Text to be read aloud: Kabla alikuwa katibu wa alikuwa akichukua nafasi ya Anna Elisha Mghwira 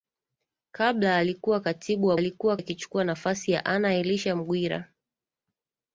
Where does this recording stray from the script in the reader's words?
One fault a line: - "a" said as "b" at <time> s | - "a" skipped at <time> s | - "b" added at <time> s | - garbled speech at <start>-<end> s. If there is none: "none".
none